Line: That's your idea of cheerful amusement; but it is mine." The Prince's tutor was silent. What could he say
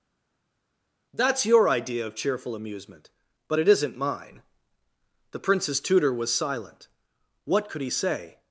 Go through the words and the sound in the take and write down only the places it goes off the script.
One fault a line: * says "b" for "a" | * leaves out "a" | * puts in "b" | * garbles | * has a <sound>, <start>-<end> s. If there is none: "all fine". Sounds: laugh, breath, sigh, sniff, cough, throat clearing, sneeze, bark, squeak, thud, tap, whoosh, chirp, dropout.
* says "isn't" for "is"